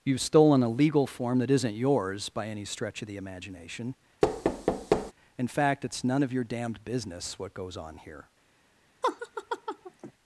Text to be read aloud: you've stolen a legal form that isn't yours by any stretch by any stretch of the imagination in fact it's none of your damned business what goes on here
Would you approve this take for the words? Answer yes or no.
no